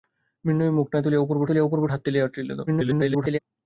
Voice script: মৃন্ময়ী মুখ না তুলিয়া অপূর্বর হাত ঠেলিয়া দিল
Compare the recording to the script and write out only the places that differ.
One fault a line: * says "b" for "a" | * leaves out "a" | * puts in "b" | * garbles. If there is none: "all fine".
* puts in "তুলিয়া অপূর্বর"
* garbles